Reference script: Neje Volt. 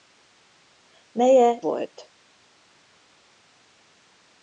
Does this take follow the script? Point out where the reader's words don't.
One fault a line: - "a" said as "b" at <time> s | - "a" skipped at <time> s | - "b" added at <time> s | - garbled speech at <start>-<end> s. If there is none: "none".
none